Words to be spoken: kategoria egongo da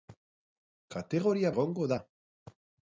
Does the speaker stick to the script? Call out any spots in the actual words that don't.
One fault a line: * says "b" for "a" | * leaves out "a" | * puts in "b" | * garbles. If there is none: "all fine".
all fine